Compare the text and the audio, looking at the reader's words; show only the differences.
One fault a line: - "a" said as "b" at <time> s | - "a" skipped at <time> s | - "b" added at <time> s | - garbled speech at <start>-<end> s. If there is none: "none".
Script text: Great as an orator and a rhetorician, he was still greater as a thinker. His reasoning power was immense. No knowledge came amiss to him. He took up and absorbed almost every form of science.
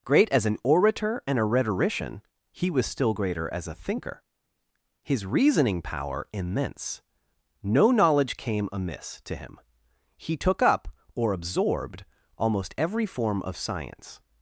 - "was" skipped at 6.3 s
- "and" said as "or" at 11.1 s